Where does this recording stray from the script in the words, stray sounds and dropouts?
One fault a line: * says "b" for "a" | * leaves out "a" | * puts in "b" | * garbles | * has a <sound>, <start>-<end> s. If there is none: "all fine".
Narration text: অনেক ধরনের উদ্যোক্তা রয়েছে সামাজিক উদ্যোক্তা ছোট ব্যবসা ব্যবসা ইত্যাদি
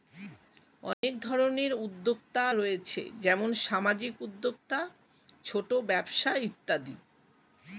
* has a dropout, 0.9-1.0 s
* puts in "যেমন"
* leaves out "ব্যবসা"